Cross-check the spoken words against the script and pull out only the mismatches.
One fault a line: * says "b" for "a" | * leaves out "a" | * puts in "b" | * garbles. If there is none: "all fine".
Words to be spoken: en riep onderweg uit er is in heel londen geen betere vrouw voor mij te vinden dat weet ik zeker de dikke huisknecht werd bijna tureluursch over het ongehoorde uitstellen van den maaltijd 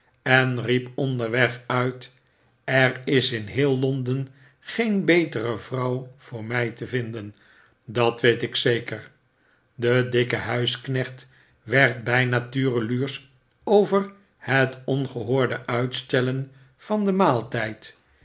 all fine